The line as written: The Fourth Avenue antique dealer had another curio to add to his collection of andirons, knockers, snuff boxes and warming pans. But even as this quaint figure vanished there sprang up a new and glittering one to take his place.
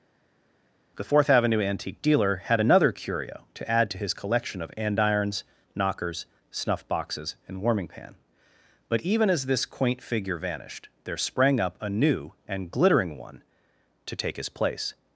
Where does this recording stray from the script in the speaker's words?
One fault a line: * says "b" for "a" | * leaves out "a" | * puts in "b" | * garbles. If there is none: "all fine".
* says "pan" for "pans"